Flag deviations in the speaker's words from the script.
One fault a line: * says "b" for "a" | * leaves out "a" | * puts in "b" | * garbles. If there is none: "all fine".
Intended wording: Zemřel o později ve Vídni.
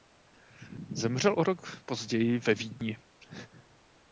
* puts in "rok"